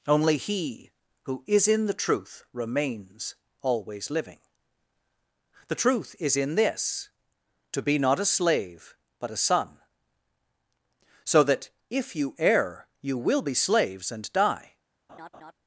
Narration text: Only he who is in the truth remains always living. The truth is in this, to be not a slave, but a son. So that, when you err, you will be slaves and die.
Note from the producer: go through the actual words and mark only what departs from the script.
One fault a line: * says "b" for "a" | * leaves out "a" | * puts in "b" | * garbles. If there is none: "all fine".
* says "if" for "when"